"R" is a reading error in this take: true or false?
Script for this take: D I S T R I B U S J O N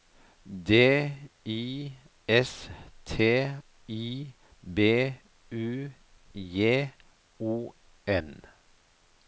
true